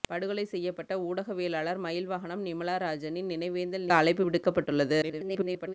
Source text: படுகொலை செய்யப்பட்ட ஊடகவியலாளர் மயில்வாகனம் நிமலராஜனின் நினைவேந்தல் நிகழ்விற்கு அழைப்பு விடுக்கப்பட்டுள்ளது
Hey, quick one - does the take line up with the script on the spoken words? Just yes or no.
no